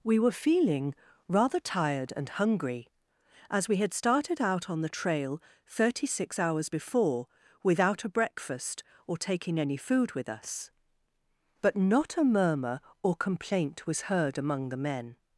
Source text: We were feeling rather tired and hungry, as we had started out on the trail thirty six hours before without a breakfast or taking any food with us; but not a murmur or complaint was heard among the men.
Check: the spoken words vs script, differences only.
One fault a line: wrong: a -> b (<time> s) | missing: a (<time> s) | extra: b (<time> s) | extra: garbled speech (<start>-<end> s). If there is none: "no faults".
no faults